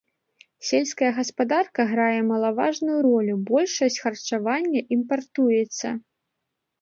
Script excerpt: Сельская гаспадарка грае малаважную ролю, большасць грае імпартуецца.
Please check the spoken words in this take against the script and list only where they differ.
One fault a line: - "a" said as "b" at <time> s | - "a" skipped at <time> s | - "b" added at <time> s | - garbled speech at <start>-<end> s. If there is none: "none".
- "грае" said as "харчавання" at 4.0 s